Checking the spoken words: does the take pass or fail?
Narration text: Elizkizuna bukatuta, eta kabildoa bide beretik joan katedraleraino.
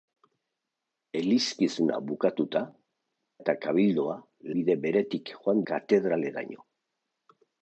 pass